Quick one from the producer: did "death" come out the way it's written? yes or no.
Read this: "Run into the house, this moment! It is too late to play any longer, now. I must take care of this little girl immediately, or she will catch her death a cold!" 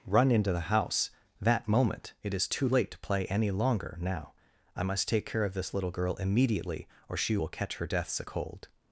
no